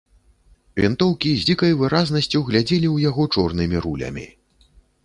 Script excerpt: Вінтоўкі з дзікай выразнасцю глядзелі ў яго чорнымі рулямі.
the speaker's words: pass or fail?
pass